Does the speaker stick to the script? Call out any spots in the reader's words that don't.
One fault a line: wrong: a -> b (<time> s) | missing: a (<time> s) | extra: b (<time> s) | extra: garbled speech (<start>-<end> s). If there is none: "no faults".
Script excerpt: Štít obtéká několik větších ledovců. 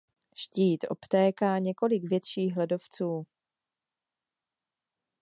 no faults